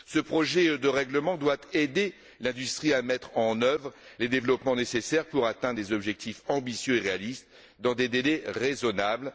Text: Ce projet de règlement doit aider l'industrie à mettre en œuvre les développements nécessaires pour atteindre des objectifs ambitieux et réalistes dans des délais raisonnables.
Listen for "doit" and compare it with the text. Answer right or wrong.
right